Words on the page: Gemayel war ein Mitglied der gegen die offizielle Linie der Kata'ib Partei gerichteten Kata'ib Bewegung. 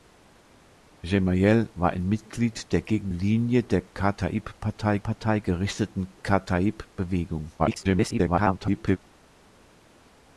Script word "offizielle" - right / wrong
wrong